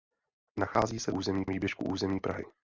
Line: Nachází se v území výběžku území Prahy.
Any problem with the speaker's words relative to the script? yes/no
no